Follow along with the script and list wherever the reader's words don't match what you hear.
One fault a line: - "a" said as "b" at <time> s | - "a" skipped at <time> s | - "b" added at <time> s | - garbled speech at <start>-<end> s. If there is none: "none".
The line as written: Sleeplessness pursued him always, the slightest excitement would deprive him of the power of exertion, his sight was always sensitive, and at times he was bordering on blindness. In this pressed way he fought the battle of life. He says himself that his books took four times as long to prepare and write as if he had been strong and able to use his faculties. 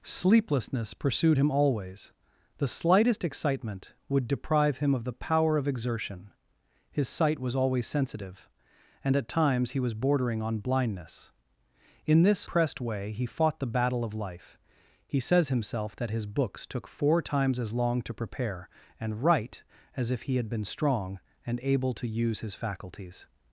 none